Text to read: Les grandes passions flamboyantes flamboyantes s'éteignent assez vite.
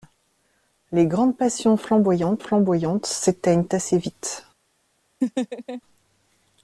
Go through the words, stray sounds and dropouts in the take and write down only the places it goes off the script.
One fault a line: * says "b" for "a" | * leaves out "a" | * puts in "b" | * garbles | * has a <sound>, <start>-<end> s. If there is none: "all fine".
* has a laugh, 5.2-5.8 s